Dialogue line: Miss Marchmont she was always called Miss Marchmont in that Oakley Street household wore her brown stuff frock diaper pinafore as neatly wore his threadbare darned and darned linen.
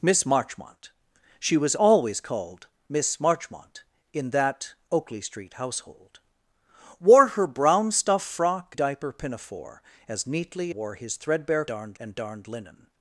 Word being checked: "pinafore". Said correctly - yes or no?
yes